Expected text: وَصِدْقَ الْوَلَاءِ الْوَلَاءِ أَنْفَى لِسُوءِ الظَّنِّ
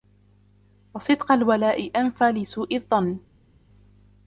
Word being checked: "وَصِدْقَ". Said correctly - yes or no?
yes